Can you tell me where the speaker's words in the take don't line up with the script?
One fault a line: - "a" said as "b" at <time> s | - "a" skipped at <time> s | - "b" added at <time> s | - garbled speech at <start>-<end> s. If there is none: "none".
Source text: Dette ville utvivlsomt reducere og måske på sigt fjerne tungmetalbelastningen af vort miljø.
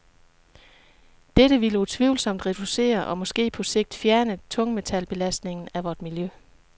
none